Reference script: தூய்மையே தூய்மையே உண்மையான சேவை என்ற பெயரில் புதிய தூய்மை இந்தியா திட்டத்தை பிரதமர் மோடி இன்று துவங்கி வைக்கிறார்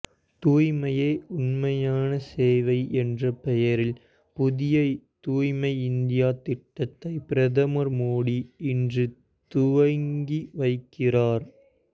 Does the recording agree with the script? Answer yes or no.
no